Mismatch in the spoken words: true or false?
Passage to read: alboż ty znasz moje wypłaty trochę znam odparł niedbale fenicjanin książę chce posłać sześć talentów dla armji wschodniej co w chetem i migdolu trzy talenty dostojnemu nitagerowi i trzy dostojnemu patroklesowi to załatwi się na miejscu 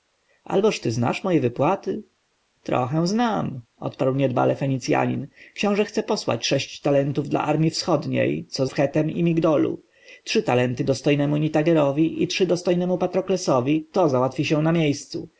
false